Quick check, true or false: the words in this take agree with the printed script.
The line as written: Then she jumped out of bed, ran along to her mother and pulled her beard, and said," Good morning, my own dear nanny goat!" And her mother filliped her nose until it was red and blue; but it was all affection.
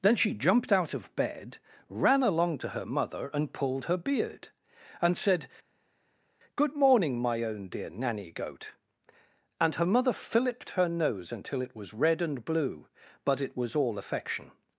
true